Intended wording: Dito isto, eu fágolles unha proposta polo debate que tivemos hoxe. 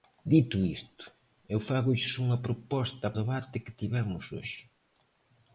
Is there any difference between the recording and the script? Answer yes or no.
yes